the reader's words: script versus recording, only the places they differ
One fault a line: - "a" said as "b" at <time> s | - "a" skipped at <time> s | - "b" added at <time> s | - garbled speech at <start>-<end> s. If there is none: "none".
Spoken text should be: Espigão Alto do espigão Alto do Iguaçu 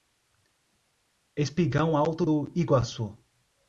- "espigão Alto do" skipped at 2.5 s